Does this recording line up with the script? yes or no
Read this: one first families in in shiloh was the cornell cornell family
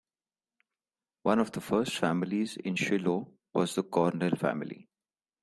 no